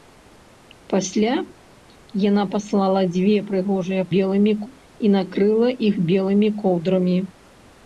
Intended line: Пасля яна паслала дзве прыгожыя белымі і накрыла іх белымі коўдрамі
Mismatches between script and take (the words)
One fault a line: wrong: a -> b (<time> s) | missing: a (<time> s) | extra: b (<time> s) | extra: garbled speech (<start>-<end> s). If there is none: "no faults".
no faults